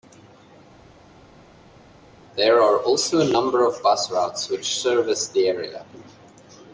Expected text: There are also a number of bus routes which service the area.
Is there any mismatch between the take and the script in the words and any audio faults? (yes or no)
no